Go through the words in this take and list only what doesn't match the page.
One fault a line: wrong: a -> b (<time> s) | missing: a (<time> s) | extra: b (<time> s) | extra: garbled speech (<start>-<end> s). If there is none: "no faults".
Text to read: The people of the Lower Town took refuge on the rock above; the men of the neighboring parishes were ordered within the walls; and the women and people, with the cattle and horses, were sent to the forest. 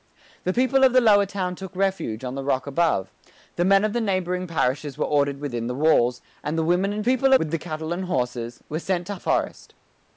no faults